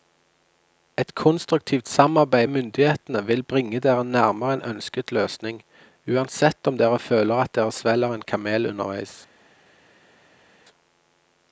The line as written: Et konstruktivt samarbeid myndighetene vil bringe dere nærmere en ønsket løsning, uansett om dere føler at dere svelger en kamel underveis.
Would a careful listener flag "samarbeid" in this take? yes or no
no